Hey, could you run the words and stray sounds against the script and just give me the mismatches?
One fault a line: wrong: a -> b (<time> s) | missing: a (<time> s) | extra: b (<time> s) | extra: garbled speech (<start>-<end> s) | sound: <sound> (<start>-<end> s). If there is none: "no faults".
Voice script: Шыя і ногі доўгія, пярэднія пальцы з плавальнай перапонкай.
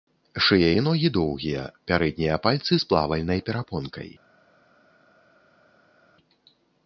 no faults